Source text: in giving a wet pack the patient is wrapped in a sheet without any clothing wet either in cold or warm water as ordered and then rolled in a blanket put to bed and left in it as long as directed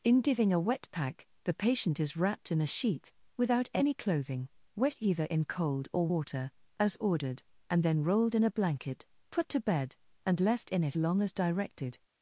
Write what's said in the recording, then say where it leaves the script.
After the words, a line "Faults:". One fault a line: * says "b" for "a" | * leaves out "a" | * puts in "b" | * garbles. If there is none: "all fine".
in giving a wet pack the patient is wrapped in a sheet without any clothing wet either in cold or water as ordered and then rolled in a blanket put to bed and left in it long as directed
Faults:
* leaves out "warm"
* leaves out "as"